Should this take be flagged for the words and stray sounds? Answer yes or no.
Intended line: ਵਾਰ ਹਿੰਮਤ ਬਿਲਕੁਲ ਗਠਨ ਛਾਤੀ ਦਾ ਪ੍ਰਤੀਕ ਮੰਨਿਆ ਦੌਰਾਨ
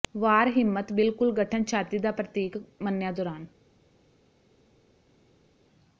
no